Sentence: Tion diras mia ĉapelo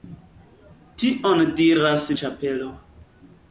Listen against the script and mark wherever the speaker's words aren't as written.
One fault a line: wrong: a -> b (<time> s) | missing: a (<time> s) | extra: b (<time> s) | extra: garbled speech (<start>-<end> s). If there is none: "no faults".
missing: mia (2.1 s)